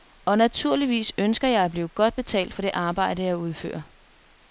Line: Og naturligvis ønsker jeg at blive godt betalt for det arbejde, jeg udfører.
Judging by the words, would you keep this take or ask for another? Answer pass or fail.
pass